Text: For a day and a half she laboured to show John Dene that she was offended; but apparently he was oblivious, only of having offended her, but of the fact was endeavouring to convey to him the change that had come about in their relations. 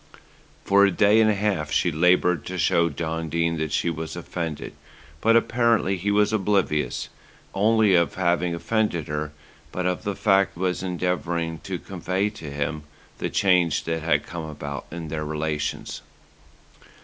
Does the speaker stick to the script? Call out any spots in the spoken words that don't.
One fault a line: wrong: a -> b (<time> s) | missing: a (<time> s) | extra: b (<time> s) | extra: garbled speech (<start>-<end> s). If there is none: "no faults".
no faults